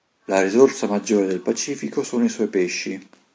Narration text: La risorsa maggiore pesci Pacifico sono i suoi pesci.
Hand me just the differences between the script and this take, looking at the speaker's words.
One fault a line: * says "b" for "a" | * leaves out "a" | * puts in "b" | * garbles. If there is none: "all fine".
* says "del" for "pesci"